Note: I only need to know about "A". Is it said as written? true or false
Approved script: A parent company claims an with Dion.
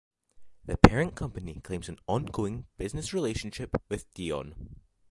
false